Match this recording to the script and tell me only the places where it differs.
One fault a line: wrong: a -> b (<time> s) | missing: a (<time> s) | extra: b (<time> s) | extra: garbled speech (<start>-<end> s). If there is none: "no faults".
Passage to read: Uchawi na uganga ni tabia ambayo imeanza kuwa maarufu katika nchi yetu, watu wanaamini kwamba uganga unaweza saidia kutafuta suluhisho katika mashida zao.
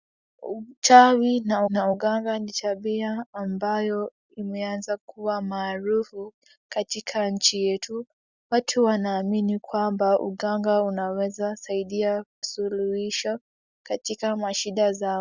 extra: na (1.6 s)
missing: kutafuta (12.2 s)